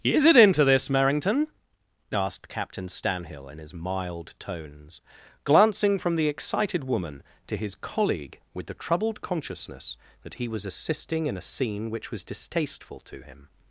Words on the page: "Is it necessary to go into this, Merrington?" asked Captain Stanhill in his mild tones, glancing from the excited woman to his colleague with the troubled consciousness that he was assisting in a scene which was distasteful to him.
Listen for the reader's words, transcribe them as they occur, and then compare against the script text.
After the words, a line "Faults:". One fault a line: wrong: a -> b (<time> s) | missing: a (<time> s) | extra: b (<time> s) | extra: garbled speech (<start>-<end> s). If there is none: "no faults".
"Is it into this, Merrington?" asked Captain Stanhill in his mild tones, glancing from the excited woman to his colleague with the troubled consciousness that he was assisting in a scene which was distasteful to him.
Faults:
missing: necessary to go (0.3 s)